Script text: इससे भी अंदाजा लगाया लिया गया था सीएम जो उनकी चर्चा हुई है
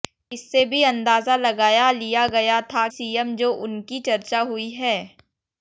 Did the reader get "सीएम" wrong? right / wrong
right